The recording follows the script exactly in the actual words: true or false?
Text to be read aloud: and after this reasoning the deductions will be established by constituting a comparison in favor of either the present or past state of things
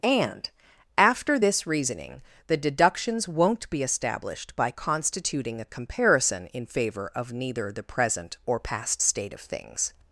false